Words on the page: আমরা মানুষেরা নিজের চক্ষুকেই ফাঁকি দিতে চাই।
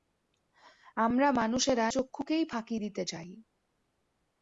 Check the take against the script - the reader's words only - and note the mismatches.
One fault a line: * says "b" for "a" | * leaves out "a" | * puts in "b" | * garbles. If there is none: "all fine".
* leaves out "নিজের"